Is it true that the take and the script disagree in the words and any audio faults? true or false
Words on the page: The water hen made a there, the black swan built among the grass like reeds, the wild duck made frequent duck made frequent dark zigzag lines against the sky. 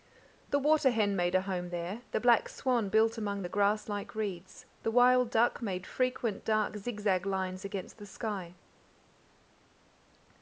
true